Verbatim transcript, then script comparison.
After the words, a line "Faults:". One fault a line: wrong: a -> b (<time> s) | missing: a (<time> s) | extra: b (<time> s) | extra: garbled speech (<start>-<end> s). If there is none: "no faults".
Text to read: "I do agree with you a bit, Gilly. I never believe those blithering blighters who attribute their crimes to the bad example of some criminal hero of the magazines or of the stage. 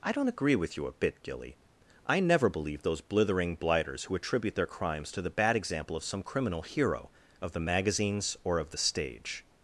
"I don't agree with you a bit, Gilly. I never believe those blithering blighters who attribute their crimes to the bad example of some criminal hero of the magazines or of the stage.
Faults:
wrong: do -> don't (0.1 s)